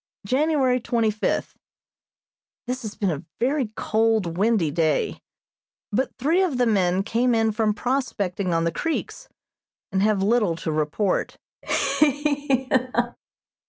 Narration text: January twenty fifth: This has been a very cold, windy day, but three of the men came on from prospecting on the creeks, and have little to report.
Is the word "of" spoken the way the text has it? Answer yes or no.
yes